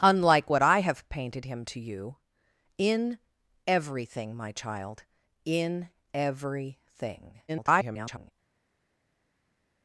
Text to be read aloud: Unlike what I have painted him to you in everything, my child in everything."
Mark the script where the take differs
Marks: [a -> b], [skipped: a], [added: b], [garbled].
Unlike what I have painted him to you in everything, my child in everything." [garbled]